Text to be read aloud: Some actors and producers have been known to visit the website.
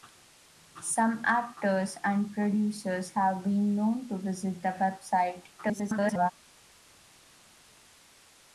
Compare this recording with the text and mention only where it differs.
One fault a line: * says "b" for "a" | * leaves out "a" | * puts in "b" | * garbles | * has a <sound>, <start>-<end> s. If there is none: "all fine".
* garbles